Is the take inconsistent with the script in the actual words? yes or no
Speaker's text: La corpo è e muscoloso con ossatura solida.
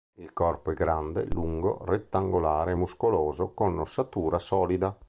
yes